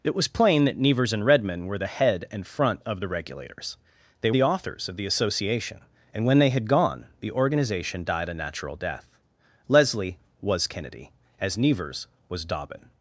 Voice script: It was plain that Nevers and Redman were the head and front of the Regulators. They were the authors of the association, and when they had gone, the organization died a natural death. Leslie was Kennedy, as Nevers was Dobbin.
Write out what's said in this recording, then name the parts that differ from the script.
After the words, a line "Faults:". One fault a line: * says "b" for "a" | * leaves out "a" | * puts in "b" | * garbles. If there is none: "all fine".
It was plain that Nevers and Redman were the head and front of the Regulators. They the authors of the association, and when they had gone, the organization died a natural death. Leslie was Kennedy, as Nevers was Dobbin.
Faults:
* leaves out "were"